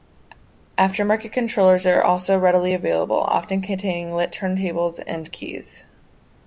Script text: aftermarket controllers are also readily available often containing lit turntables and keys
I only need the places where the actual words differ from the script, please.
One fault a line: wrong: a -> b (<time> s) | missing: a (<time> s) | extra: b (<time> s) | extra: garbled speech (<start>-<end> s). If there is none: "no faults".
no faults